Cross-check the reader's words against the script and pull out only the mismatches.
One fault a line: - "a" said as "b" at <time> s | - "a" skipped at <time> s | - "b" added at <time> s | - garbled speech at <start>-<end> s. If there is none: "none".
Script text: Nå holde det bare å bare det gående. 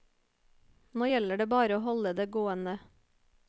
- "holde" said as "gjelder" at 1.1 s
- "bare" said as "holde" at 1.8 s